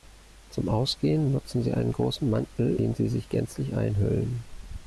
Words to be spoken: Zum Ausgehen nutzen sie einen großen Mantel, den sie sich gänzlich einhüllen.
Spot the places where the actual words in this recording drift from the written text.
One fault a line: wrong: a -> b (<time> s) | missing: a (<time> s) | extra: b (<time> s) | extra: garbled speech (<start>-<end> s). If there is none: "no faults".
no faults